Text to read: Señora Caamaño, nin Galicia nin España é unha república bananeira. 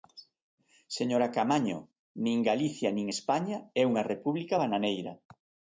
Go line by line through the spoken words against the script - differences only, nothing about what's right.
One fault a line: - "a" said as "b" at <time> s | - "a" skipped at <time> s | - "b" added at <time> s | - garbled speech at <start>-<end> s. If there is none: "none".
none